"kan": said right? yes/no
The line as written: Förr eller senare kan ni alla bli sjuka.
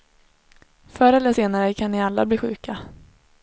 yes